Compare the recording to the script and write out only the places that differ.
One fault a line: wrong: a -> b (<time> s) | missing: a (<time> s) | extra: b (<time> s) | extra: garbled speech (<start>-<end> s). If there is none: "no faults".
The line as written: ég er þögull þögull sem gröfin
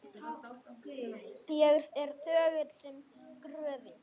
missing: þögull (2.8 s)